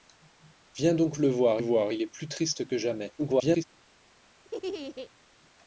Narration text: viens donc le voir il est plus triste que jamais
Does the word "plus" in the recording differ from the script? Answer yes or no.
no